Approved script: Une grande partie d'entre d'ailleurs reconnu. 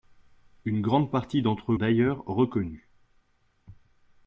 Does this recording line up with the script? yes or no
yes